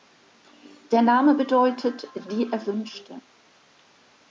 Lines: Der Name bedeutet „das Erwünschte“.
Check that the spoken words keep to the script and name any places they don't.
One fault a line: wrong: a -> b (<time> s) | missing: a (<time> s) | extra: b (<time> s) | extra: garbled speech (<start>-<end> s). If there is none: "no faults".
wrong: das -> die (2.3 s)